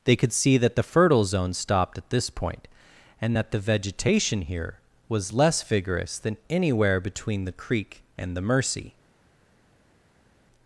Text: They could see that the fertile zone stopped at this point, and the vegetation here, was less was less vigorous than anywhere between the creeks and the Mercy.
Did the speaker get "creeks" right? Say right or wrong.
wrong